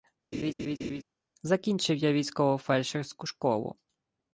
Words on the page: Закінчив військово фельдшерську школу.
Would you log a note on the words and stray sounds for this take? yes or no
yes